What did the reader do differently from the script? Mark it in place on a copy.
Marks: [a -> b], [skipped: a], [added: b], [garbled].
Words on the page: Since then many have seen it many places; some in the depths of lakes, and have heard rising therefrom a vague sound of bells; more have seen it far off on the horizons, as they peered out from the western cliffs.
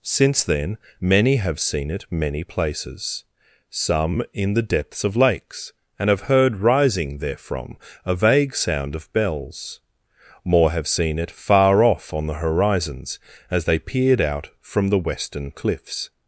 Since then many have seen it many places; some in the depths of lakes, and have heard rising therefrom a vague sound of bells; more have seen it far off on the horizons, as they peered out from the western cliffs.